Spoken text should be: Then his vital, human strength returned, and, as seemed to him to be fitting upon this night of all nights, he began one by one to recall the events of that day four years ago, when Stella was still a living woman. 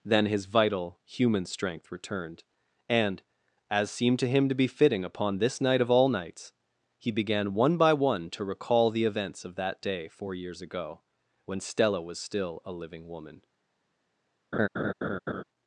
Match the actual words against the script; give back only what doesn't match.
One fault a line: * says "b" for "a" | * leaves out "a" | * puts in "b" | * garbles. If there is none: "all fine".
all fine